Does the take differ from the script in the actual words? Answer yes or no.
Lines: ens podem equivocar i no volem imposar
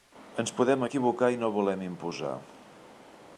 no